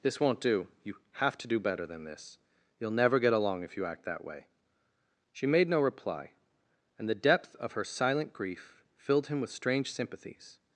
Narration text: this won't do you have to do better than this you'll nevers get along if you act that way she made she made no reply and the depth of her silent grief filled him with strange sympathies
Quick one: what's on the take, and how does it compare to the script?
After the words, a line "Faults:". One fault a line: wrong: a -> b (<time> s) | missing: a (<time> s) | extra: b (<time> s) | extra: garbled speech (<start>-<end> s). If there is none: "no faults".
this won't do you have to do better than this you'll never get along if you act that way she made no reply and the depth of her silent grief filled him with strange sympathies
Faults:
wrong: nevers -> never (2.9 s)
missing: she made (5.7 s)